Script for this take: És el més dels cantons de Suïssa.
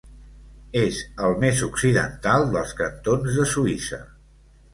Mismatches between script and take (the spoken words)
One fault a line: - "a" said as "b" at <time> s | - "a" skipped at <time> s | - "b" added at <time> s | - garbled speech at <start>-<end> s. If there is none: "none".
- "occidental" added at 1.7 s